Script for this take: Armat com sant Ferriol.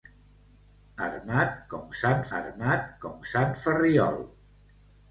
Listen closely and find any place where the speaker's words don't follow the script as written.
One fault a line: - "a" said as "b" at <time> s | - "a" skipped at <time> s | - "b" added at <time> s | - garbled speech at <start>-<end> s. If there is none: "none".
- "armat com sant" added at 2.4 s